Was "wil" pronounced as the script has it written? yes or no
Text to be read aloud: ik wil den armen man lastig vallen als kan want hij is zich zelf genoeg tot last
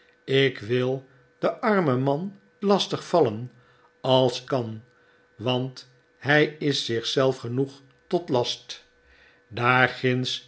yes